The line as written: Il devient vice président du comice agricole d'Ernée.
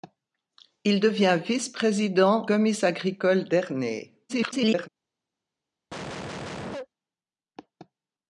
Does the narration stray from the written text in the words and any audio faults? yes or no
yes